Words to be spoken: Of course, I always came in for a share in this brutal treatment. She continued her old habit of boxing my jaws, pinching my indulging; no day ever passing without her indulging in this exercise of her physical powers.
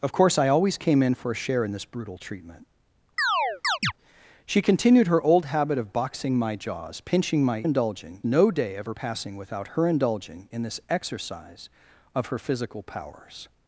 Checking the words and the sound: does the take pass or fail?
fail